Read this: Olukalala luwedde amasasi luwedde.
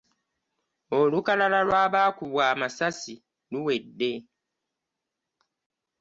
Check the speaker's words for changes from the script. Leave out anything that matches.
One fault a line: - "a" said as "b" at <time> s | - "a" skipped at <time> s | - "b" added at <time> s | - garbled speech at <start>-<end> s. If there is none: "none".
- "luwedde" said as "lw'abaakubwa" at 1.7 s